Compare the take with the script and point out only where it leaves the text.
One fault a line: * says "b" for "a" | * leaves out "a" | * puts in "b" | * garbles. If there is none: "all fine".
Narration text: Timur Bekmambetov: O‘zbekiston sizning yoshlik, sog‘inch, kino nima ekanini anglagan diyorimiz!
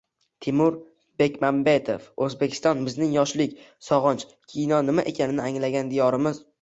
* says "bizning" for "sizning"